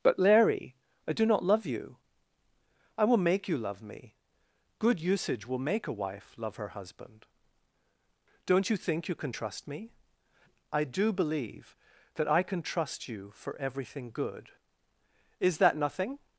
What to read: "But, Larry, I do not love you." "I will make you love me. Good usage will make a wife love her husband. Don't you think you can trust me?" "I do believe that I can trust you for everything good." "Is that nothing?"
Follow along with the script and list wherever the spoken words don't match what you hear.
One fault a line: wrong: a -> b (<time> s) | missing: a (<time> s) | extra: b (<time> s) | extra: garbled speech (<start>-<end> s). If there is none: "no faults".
no faults